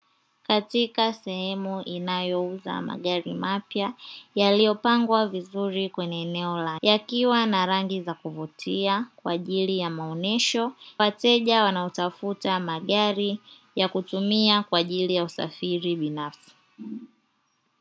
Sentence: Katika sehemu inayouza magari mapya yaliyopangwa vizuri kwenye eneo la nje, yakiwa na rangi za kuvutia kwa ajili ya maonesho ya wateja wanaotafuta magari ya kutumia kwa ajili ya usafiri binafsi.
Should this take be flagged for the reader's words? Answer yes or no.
yes